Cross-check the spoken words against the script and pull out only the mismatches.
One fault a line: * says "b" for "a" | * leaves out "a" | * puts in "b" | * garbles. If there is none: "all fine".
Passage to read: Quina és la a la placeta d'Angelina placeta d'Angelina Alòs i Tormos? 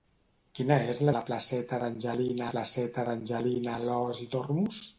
all fine